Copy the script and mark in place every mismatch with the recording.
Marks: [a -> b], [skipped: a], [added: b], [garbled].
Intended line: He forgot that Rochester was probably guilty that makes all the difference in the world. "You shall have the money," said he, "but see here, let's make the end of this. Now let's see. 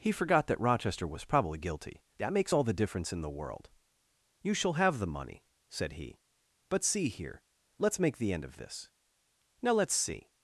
He forgot that Rochester was probably guilty that makes all the difference in the world. "You shall have the money," said he, "but see here, let's make the end of this. Now let's see.